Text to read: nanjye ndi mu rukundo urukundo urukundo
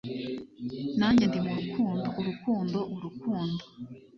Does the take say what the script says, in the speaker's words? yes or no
yes